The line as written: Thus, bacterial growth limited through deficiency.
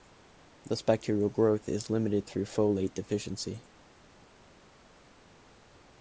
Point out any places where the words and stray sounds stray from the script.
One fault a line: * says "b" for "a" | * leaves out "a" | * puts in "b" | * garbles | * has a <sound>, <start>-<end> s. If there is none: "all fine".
* puts in "is"
* puts in "folate"